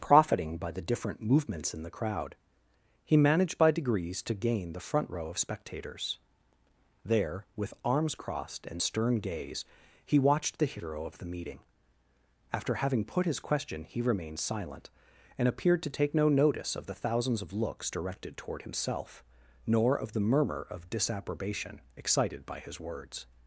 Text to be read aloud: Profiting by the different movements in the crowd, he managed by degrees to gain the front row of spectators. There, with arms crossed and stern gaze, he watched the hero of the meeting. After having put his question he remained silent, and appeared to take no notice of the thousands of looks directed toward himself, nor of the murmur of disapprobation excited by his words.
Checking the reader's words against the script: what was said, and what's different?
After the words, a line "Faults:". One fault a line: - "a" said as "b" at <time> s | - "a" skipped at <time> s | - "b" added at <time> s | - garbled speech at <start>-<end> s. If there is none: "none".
Profiting by the different movements in the crowd, he managed by degrees to gain the front row of spectators. There, with arms crossed and stern gaze, he watched the hero of the meeting. After having put his question he remained silent, and appeared to take no notice of the thousands of looks directed toward himself, nor of the murmur of disapprobation excited by his words.
Faults:
none